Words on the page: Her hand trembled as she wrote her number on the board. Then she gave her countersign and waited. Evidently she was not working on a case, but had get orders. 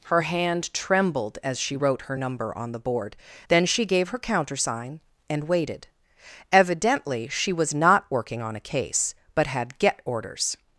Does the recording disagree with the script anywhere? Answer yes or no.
no